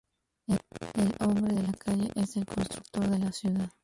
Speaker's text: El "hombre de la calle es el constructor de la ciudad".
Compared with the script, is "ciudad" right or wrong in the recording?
right